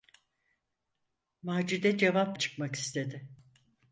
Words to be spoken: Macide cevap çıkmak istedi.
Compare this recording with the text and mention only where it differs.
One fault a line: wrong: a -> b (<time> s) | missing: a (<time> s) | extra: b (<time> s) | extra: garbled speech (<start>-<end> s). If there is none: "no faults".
no faults